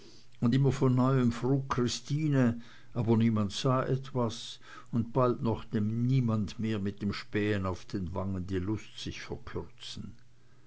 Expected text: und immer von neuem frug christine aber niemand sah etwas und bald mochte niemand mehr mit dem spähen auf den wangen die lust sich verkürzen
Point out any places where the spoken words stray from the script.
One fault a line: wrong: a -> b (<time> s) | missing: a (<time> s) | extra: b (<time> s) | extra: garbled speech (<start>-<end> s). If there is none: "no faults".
no faults